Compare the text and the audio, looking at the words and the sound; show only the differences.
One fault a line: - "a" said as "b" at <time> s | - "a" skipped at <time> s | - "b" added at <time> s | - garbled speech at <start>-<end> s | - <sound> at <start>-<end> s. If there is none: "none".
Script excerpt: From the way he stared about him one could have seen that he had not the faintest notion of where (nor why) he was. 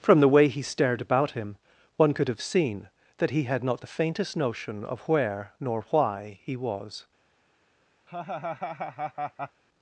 - laugh at 8.1-9.6 s